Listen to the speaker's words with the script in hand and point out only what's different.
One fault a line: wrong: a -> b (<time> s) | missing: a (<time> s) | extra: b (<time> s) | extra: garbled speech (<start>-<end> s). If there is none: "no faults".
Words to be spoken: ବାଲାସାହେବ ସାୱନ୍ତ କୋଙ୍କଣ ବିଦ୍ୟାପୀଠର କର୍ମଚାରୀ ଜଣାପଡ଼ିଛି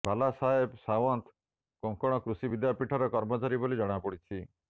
extra: କୃଷି (2.2 s)
extra: ବୋଲି (3.6 s)